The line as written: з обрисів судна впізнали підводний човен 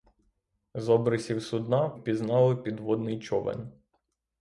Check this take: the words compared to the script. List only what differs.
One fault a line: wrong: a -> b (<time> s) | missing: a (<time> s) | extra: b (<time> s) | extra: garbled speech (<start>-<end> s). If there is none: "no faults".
no faults